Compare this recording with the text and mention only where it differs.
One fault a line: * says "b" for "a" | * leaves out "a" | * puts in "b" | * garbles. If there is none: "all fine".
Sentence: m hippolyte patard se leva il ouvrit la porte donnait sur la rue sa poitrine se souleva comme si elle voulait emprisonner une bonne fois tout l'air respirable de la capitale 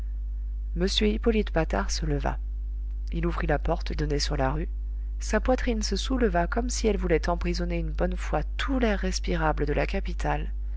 all fine